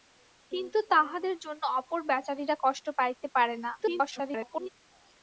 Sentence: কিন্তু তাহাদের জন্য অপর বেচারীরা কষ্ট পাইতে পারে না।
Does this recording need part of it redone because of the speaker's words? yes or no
yes